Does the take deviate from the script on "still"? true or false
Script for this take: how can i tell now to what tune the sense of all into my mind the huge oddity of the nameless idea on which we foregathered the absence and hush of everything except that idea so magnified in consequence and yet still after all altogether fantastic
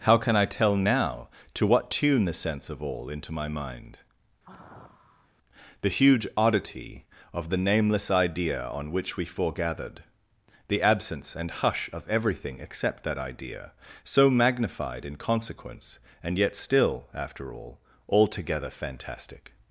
false